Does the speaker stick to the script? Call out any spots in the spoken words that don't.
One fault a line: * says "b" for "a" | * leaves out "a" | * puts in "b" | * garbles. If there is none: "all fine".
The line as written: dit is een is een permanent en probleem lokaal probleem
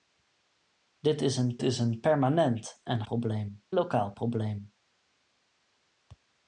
all fine